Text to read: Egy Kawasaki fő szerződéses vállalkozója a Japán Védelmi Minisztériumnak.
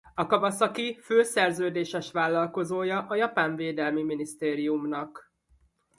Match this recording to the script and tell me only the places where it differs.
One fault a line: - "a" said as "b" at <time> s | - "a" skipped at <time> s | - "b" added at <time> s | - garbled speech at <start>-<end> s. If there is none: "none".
- "Egy" said as "A" at 0.1 s